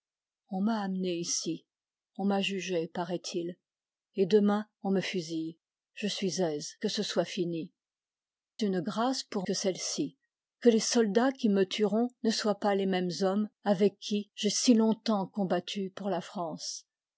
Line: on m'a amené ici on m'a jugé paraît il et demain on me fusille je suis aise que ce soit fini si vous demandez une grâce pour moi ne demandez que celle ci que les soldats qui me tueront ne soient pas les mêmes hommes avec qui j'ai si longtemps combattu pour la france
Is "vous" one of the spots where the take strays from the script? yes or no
yes